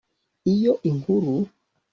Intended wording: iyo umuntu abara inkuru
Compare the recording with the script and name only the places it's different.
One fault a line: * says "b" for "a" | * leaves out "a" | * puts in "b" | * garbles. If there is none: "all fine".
* leaves out "umuntu abara"